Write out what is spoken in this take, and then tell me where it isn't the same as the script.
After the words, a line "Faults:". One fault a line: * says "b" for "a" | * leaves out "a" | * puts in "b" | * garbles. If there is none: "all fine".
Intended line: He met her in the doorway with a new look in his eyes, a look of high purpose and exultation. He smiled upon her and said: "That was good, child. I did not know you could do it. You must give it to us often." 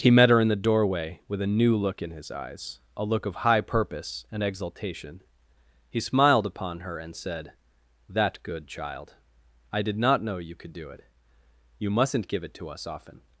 He met her in the doorway with a new look in his eyes, a look of high purpose and exultation. He smiled upon her and said: "That good, child. I did not know you could do it. You mustn't give it to us often."
Faults:
* leaves out "was"
* says "mustn't" for "must"